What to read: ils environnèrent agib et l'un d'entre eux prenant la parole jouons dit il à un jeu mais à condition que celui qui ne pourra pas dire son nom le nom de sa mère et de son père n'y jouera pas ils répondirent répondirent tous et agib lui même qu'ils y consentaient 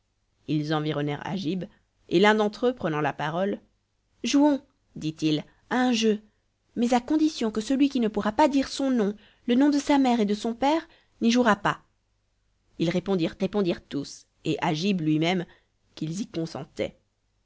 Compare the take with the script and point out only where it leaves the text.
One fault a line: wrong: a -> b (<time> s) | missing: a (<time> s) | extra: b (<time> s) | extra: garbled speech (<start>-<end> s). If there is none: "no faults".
no faults